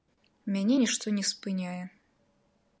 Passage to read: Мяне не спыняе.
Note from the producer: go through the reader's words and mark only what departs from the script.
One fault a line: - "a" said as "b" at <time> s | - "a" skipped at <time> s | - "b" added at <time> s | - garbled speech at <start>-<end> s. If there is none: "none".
- "нішто" added at 0.8 s